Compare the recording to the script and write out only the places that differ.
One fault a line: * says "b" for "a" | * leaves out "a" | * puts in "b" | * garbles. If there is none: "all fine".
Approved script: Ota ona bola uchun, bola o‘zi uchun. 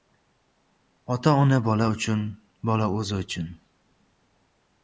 all fine